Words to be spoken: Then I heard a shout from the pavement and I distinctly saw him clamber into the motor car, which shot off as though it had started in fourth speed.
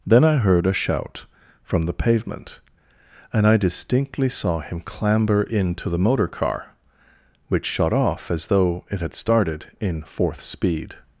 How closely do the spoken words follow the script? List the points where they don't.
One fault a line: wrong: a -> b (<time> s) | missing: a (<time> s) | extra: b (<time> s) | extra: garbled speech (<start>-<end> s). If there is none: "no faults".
no faults